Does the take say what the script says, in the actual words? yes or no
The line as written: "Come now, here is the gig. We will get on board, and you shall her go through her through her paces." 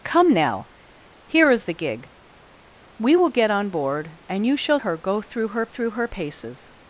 yes